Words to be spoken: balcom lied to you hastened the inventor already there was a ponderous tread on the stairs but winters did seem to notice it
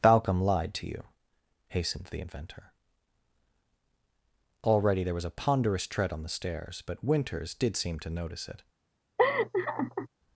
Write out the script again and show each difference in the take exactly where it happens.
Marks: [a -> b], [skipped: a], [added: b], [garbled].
balcom lied to you hastened the inventor already there was a ponderous tread on the stairs but winters did seem to notice it